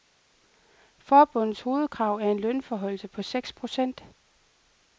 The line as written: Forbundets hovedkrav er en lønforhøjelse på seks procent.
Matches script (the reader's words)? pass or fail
pass